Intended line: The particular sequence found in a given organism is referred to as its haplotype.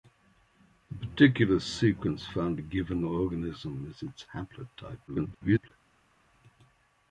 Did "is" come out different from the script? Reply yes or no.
yes